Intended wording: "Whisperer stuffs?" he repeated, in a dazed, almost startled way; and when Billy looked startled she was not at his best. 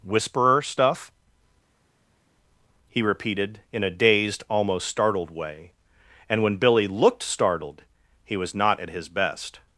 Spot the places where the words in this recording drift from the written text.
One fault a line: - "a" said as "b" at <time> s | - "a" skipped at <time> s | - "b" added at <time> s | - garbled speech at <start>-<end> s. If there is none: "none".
- "stuffs" said as "stuff" at 0.6 s
- "she" said as "he" at 8.2 s